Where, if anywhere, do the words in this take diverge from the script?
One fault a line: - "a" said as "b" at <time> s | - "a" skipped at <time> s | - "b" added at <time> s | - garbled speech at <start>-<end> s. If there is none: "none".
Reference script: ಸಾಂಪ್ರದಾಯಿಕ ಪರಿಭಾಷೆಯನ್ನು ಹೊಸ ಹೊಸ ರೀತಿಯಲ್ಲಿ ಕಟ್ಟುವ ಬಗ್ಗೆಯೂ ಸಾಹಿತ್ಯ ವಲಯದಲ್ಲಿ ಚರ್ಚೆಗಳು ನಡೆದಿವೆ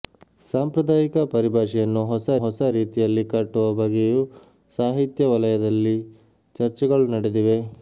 none